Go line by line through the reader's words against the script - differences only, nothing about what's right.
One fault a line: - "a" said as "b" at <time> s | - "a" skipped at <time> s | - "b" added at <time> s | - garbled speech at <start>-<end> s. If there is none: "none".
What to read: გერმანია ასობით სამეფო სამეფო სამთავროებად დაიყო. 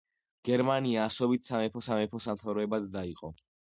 none